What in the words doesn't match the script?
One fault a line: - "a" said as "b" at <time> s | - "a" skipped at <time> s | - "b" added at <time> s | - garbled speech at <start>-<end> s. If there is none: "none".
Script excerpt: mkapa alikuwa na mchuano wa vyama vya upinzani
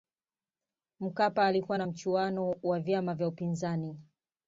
none